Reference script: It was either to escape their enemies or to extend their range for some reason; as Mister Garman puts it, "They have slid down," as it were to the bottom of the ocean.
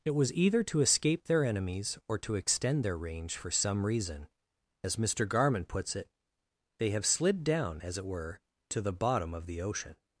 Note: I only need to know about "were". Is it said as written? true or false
true